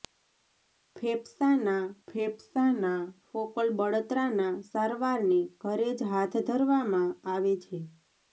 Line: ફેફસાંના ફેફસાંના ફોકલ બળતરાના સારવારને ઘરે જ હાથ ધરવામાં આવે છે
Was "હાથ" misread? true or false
false